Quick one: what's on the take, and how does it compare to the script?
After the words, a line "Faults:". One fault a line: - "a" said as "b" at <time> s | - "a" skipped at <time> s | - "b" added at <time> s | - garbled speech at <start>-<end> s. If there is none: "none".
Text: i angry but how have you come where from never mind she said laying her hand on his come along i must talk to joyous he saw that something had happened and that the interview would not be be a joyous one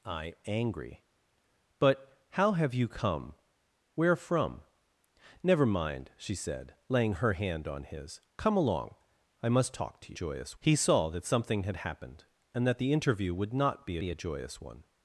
i angry but how have you come where from never mind she said laying her hand on his come along i must talk to joyous he saw that something had happened and that the interview would not be be a joyous one
Faults:
none